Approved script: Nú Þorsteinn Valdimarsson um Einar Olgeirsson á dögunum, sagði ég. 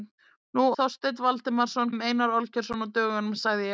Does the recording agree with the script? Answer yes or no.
yes